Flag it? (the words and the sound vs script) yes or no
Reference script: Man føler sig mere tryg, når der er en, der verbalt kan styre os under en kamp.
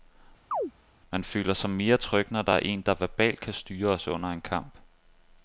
yes